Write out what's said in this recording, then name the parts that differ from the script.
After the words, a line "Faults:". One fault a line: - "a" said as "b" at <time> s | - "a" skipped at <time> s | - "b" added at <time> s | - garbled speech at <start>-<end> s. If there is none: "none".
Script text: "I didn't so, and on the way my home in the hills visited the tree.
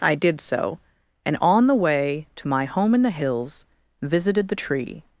"I did so, and on the way to my home in the hills visited the tree.
Faults:
- "didn't" said as "did" at 0.1 s
- "to" added at 2.4 s